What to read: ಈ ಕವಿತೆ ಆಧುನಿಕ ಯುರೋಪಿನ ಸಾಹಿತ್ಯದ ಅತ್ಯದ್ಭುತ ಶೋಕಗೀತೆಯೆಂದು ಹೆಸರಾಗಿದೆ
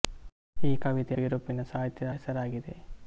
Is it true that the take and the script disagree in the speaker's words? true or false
true